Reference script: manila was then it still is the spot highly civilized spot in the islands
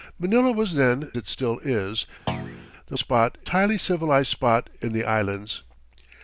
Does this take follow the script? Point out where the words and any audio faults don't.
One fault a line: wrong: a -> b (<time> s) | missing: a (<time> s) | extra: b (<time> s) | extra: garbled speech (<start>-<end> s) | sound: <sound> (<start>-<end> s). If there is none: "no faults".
sound: thud (2.3-2.7 s)